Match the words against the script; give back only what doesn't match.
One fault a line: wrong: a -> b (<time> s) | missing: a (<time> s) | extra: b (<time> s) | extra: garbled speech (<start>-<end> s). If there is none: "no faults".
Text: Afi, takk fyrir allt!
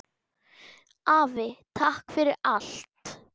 no faults